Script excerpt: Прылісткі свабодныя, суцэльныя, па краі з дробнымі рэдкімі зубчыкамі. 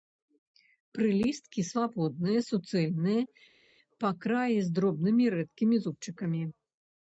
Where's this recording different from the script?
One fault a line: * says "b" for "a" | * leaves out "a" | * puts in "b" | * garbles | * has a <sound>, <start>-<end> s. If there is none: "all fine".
all fine